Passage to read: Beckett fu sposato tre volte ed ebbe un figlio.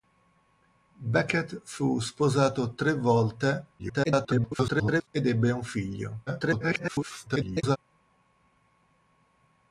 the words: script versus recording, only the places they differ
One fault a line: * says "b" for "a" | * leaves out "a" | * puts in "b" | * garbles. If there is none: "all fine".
* garbles
* garbles